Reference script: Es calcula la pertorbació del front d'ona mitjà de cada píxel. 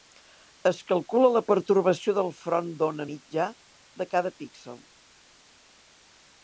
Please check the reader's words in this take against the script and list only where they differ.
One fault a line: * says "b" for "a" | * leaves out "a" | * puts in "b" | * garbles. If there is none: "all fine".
all fine